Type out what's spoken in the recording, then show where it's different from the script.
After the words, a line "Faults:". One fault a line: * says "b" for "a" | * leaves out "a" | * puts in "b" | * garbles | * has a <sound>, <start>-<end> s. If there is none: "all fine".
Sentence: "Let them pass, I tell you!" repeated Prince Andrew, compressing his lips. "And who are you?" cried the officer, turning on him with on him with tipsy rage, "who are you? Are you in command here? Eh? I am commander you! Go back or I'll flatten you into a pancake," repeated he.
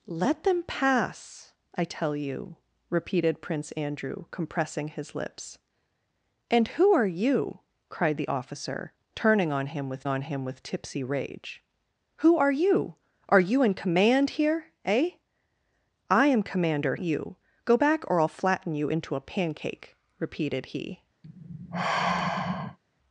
"Let them pass, I tell you!" repeated Prince Andrew, compressing his lips. "And who are you?" cried the officer, turning on him with on him with tipsy rage, "who are you? Are you in command here? Eh? I am commander you! Go back or I'll flatten you into a pancake," repeated he.
Faults:
* has a sigh, 21.2-22.8 s